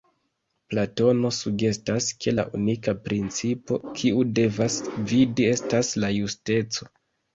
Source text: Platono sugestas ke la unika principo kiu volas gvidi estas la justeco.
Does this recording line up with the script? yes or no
no